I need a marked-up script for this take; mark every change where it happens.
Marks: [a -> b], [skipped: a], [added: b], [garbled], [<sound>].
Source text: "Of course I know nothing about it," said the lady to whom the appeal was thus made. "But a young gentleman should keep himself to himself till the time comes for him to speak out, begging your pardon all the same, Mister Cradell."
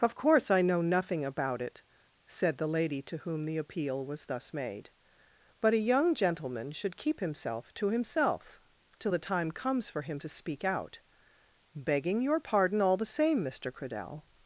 "Of course I know nothing about it," said the lady to whom the appeal was thus made. "But a young gentleman should keep himself to himself till the time comes for him to speak out, begging your pardon all the same, Mister Cradell."